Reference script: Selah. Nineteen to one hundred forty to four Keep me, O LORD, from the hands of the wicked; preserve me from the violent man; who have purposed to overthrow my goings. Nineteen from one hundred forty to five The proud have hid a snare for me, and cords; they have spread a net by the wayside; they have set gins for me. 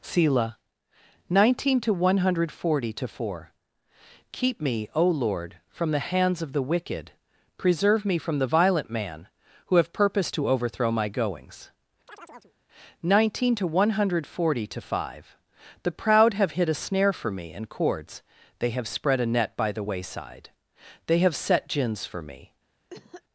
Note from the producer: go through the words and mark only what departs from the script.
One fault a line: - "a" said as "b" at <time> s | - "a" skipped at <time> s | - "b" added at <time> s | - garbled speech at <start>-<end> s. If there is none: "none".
- "from" said as "to" at 13.6 s